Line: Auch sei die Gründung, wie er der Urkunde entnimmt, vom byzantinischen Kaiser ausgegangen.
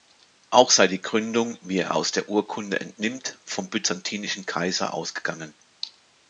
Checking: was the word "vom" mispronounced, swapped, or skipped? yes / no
no